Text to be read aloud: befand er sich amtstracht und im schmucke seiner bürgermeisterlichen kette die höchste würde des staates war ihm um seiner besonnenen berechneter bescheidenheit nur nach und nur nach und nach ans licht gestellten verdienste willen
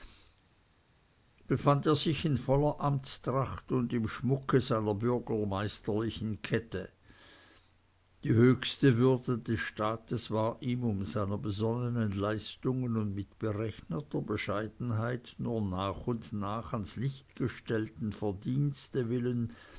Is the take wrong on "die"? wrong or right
right